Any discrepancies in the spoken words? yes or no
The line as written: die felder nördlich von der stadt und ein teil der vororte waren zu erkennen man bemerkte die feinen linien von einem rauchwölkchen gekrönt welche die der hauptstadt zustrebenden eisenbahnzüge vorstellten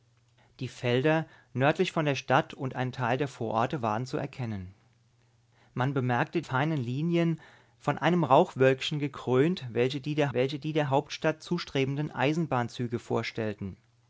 yes